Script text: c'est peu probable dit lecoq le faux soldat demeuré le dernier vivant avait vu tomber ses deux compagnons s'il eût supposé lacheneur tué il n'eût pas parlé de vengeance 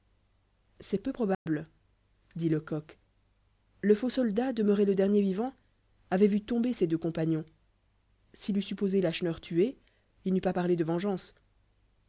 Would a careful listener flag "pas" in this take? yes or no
no